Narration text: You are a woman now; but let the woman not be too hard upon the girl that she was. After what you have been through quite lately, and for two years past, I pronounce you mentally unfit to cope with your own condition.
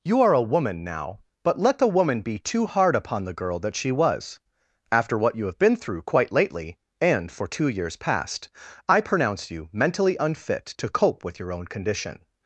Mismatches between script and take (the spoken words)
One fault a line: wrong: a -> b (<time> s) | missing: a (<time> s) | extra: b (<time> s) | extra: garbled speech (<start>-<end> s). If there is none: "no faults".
missing: not (2.2 s)